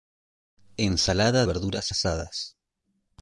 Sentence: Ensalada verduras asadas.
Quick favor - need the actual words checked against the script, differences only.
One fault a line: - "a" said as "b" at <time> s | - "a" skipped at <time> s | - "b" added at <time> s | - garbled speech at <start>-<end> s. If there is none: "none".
none